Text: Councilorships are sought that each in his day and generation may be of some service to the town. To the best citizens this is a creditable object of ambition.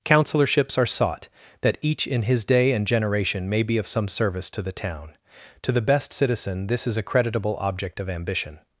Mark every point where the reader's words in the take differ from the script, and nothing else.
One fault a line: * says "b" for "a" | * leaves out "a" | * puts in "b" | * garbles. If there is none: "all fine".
* says "citizen" for "citizens"